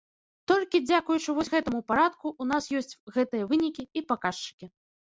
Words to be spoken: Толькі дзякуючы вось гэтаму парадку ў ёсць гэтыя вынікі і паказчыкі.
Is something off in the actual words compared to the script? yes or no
yes